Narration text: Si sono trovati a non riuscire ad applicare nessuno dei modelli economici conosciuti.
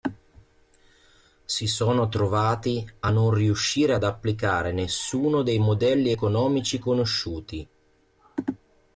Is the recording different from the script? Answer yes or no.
no